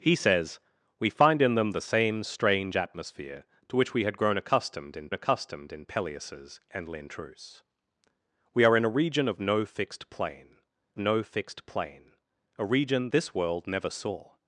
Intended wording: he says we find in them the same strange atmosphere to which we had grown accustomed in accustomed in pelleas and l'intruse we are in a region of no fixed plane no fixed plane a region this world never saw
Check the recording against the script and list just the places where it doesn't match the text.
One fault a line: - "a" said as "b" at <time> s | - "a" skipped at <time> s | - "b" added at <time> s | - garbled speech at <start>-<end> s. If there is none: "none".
none